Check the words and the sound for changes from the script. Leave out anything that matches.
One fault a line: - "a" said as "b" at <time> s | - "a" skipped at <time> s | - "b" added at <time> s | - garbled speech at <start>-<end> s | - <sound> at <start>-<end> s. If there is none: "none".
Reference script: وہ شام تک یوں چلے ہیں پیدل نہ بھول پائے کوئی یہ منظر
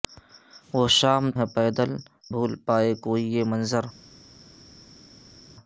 - "تک یوں چلے" skipped at 1.2 s
- "نہ" skipped at 1.9 s